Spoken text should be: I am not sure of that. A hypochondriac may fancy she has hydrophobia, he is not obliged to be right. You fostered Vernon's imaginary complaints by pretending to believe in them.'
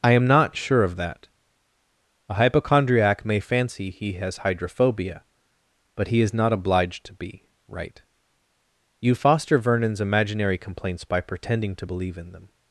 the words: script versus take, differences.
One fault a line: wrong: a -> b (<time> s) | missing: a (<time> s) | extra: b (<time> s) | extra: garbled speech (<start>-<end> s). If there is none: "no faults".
wrong: she -> he (3.9 s)
extra: but (6.0 s)
wrong: fostered -> foster (9.2 s)